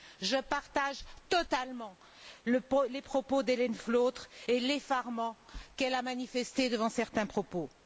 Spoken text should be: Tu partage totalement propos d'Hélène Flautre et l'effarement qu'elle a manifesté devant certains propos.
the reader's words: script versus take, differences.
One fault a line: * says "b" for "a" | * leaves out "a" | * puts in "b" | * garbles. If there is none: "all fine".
* says "Je" for "Tu"
* puts in "les"